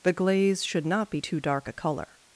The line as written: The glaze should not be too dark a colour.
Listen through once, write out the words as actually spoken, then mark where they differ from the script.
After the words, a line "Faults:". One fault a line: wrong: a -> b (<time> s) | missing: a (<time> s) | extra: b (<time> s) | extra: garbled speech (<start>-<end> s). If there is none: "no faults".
The glaze should not be too dark a colour.
Faults:
no faults